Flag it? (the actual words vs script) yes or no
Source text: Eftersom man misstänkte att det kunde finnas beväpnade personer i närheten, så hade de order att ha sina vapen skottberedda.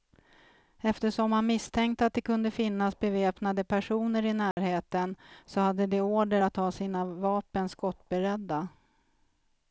no